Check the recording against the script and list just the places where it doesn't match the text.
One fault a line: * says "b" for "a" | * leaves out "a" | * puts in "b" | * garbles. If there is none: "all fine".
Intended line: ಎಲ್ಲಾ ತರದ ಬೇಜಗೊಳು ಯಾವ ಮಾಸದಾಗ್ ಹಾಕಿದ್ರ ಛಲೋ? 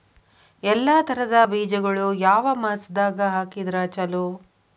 all fine